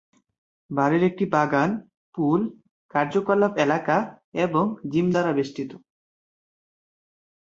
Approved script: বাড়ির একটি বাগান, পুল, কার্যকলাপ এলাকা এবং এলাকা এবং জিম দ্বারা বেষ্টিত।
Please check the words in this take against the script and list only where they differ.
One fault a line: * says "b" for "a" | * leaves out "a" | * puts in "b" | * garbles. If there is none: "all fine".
* leaves out "এলাকা এবং"